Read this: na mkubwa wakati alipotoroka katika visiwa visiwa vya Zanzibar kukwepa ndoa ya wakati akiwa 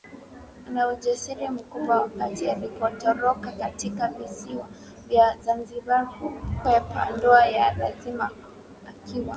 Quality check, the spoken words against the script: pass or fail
fail